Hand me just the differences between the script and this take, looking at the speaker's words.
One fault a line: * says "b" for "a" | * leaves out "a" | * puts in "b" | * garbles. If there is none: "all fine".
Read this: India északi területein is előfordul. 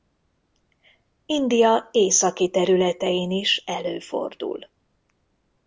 all fine